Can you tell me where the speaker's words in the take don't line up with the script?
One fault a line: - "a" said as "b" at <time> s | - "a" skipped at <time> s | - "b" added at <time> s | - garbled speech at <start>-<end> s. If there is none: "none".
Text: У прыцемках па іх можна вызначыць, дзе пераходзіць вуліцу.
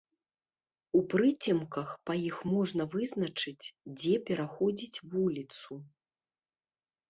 none